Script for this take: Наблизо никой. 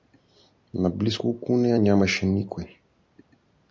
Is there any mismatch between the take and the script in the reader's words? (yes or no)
yes